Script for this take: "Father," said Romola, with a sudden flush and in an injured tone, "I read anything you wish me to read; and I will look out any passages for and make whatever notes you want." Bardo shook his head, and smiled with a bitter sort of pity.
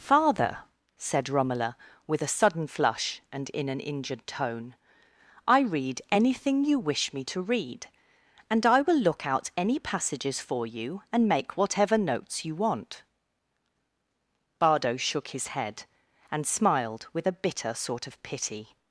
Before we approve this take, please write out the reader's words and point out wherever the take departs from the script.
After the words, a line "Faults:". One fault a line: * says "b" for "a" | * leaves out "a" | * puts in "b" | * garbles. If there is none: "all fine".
"Father," said Romola, with a sudden flush and in an injured tone, "I read anything you wish me to read; and I will look out any passages for you, and make whatever notes you want." Bardo shook his head, and smiled with a bitter sort of pity.
Faults:
* puts in "you"